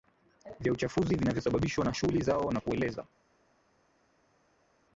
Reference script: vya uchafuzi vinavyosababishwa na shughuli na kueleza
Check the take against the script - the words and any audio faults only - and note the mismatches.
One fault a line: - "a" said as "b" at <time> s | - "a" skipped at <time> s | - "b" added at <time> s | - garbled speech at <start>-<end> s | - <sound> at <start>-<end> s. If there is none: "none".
- "zao" added at 2.2 s